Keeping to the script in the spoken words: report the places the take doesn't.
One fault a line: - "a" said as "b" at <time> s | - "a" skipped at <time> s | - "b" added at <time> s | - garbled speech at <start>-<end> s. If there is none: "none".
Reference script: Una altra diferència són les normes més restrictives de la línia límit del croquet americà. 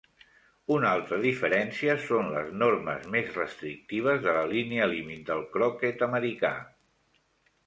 none